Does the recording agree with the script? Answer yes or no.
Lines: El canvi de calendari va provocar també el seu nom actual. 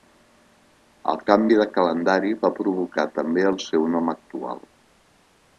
yes